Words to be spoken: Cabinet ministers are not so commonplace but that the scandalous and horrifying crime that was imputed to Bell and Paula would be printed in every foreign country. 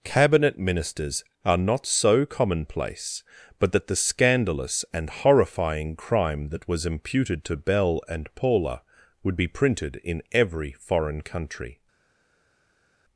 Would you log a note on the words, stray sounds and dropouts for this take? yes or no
no